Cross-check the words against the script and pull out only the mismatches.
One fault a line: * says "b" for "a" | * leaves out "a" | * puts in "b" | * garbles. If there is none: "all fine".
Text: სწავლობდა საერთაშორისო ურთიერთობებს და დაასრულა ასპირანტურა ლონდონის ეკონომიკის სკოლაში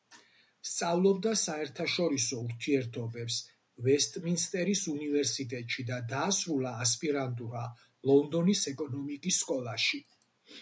* puts in "ვესტმინსტერის უნივერსიტეტში"